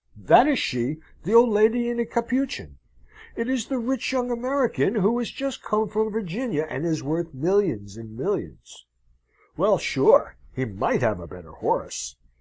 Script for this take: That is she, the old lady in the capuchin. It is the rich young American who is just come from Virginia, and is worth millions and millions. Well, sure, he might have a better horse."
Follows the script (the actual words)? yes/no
yes